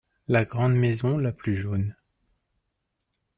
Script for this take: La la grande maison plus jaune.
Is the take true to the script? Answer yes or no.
no